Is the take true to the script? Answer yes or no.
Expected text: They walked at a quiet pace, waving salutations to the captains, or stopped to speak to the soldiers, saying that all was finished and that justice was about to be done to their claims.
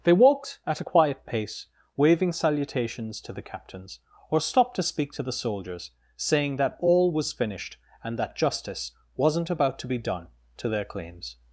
no